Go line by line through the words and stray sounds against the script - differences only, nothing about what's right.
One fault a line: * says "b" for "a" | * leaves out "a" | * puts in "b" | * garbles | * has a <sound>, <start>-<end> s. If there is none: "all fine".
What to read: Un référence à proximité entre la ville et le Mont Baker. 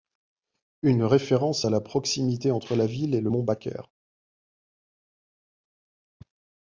* says "Une" for "Un"
* puts in "la"